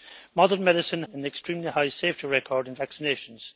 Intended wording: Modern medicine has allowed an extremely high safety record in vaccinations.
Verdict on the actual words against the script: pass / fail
fail